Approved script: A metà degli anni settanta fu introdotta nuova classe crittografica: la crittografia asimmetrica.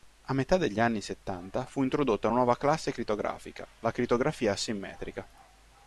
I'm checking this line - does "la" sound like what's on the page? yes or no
yes